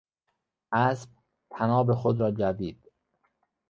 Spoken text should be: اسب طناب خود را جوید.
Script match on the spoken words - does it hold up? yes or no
yes